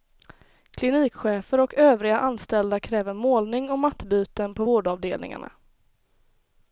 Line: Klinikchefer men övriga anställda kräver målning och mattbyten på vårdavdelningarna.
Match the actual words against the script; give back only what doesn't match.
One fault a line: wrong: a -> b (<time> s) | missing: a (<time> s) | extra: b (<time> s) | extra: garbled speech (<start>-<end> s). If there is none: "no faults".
wrong: men -> och (1.6 s)